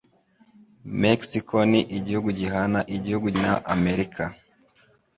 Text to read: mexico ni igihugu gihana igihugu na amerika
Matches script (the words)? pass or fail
pass